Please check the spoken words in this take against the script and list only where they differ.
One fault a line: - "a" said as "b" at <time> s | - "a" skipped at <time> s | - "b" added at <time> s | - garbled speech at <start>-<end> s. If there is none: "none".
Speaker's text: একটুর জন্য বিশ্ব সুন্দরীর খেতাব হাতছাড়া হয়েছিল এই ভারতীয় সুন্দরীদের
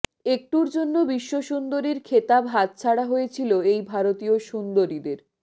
none